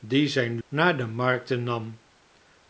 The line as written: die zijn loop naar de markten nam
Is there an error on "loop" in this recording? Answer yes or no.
yes